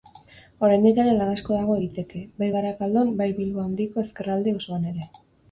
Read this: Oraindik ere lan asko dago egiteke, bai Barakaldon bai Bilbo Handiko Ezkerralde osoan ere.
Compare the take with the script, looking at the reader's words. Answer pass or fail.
pass